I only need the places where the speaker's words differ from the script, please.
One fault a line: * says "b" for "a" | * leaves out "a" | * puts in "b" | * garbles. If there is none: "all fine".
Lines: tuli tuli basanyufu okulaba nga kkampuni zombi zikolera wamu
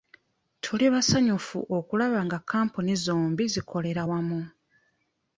* leaves out "tuli"